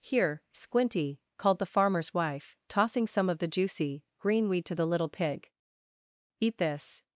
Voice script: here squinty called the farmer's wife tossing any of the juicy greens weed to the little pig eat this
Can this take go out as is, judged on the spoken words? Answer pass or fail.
fail